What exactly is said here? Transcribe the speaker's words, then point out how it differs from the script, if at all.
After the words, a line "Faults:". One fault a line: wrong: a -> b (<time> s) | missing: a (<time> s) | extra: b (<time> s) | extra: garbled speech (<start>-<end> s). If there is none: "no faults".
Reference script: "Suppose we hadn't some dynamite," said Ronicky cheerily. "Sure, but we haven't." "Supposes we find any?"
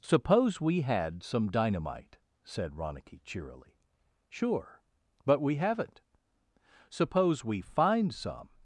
"Suppose we had some dynamite," said Ronicky cheerily. "Sure, but we haven't." "Suppose we find some?"
Faults:
wrong: hadn't -> had (0.8 s)
wrong: Supposes -> Suppose (6.9 s)
wrong: any -> some (8.1 s)